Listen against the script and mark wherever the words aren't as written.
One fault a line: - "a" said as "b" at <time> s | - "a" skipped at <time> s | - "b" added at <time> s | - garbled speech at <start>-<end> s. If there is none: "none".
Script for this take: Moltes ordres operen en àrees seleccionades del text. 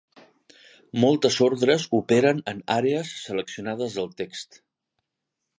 none